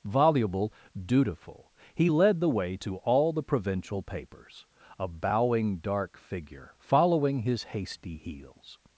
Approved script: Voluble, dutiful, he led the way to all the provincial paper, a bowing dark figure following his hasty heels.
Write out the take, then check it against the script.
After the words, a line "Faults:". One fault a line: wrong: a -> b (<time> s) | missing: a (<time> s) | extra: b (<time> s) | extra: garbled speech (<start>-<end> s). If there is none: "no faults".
Voluble, dutiful, he led the way to all the provincial papers, a bowing dark figure following his hasty heels.
Faults:
wrong: paper -> papers (4.0 s)